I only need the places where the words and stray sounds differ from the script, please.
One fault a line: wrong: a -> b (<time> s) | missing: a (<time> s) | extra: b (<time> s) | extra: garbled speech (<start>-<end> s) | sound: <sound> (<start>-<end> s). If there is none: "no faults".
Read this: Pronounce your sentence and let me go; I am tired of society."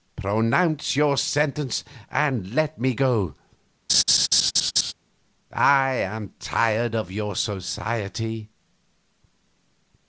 sound: laugh (3.9-4.9 s)
extra: your (7.1 s)